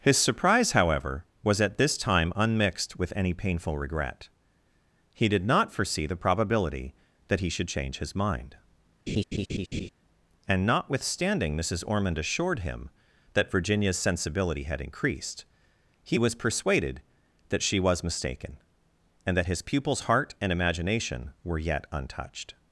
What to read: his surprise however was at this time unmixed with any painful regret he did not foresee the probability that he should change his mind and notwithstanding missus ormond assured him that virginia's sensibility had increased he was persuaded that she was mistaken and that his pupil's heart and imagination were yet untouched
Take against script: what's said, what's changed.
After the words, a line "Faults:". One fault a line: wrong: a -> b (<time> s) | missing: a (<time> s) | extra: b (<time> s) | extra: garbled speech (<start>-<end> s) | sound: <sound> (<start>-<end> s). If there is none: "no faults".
his surprise however was at this time unmixed with any painful regret he did not foresee the probability that he should change his mind and notwithstanding missus ormond assured him that virginia's sensibility had increased he was persuaded that she was mistaken and that his pupil's heart and imagination were yet untouched
Faults:
sound: laugh (9.1-9.9 s)